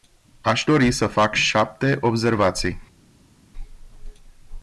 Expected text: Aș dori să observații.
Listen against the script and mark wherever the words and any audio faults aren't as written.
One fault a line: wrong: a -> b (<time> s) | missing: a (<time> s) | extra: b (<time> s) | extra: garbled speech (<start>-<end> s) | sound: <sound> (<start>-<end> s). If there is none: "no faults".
extra: fac șapte (1.1 s)